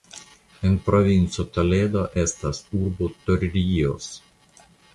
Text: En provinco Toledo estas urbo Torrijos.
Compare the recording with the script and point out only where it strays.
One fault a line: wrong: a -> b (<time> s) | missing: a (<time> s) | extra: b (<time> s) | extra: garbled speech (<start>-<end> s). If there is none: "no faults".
no faults